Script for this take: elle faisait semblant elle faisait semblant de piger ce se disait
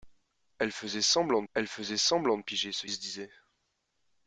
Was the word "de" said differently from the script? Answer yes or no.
no